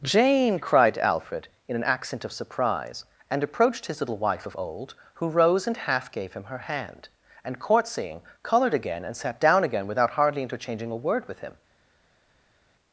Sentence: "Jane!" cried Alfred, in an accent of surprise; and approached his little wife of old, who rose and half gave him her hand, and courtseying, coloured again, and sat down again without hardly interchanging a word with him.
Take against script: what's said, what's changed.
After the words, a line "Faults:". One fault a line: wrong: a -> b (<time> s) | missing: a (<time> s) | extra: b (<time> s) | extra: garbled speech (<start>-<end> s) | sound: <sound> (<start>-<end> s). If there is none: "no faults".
"Jane!" cried Alfred, in an accent of surprise; and approached his little wife of old, who rose and half gave him her hand, and courtseying, coloured again, and sat down again without hardly interchanging a word with him.
Faults:
no faults